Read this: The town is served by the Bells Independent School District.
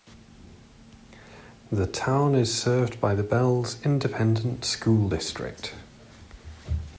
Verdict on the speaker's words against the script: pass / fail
pass